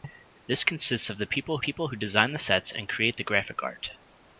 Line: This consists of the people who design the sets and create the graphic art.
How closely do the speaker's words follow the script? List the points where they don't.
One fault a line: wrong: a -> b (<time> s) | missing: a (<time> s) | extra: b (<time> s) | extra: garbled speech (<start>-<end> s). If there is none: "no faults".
extra: people (1.6 s)